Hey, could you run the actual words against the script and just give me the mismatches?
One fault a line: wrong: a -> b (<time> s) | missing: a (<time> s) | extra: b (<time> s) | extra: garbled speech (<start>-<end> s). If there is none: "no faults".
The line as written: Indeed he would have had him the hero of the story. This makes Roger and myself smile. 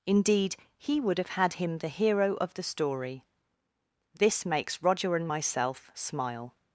no faults